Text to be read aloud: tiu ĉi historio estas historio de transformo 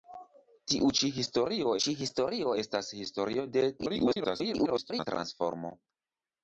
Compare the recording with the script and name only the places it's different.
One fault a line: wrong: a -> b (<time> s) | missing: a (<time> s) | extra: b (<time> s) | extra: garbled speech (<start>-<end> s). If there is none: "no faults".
extra: ĉi historio (1.9 s)
extra: garbled speech (3.8-5.1 s)